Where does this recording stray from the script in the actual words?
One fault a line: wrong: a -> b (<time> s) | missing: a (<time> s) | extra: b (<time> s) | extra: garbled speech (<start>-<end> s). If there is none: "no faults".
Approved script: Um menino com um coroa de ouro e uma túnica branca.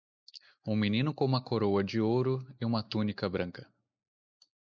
wrong: um -> uma (1.2 s)